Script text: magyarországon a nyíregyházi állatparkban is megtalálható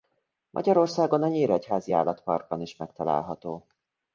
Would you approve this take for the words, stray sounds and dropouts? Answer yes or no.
yes